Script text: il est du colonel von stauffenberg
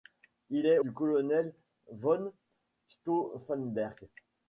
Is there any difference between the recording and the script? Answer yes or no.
no